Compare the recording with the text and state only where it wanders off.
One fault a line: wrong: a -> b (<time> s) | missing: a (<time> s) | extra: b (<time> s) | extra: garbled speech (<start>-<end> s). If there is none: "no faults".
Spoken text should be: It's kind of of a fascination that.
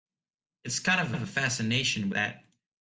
no faults